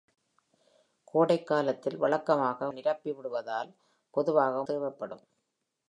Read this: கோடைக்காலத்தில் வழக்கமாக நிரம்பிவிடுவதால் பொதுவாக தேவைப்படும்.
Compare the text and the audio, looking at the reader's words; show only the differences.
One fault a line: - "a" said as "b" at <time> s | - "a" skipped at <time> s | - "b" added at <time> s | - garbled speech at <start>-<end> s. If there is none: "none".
none